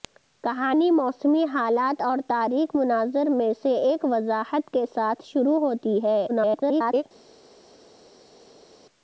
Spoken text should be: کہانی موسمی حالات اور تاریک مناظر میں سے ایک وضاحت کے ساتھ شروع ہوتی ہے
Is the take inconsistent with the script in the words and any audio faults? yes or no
yes